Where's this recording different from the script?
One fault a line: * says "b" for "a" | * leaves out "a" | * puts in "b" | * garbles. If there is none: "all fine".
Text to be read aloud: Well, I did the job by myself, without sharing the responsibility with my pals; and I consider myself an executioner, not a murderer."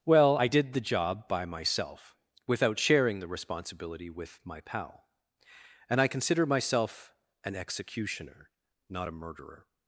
* says "pal" for "pals"